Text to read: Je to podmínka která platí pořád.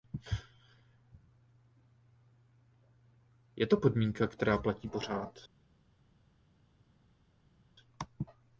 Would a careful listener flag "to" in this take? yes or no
no